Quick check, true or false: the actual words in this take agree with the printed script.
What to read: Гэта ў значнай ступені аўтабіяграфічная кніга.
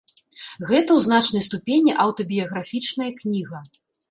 true